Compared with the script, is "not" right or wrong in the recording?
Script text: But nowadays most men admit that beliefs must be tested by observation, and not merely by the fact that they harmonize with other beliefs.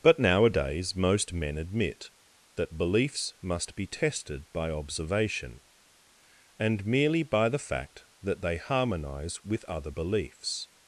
wrong